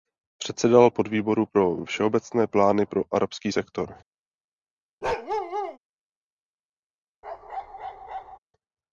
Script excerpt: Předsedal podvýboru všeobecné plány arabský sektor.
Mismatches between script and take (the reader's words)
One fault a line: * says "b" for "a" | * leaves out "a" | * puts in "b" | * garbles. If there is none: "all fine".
* puts in "pro"
* puts in "pro"